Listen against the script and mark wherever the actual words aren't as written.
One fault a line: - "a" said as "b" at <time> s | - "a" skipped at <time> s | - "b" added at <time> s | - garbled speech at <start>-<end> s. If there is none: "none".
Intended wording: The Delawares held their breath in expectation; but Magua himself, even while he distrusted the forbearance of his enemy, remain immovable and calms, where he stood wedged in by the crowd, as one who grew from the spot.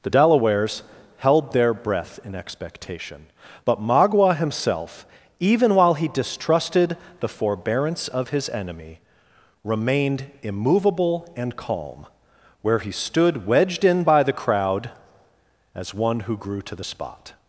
- "remain" said as "remained" at 9.6 s
- "calms" said as "calm" at 11.6 s
- "from" said as "to" at 16.6 s